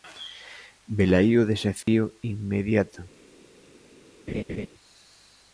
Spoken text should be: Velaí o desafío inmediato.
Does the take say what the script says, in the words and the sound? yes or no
no